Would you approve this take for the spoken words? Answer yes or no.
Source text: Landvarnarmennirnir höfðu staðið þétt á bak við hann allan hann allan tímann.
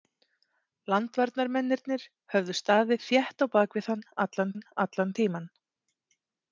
yes